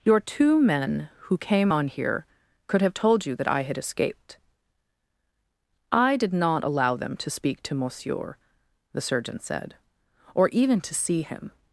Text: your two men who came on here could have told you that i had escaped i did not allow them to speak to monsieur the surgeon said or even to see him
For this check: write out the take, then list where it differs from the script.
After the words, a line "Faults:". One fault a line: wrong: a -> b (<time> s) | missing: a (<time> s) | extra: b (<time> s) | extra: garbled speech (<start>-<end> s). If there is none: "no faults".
your two men who came on here could have told you that i had escaped i did not allow them to speak to monsieur the surgeon said or even to see him
Faults:
no faults